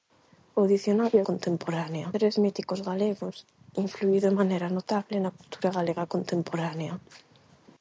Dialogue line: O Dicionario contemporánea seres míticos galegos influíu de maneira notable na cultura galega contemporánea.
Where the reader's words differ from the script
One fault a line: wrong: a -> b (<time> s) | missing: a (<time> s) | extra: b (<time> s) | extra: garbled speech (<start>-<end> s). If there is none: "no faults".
no faults